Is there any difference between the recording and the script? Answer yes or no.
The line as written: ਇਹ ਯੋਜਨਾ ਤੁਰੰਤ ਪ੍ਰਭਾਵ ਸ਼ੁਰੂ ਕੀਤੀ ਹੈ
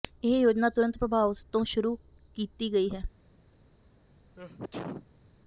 yes